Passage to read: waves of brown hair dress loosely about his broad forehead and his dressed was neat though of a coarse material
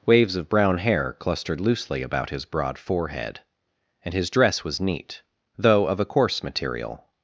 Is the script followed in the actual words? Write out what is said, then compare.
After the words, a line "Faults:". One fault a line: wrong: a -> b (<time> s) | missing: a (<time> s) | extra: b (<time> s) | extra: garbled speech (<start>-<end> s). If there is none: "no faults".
waves of brown hair clustered loosely about his broad forehead and his dress was neat though of a coarse material
Faults:
wrong: dress -> clustered (1.2 s)
wrong: dressed -> dress (4.3 s)